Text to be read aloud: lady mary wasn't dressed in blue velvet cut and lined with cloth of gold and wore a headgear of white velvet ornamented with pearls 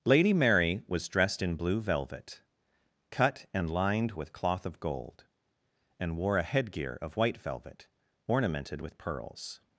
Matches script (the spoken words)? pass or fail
fail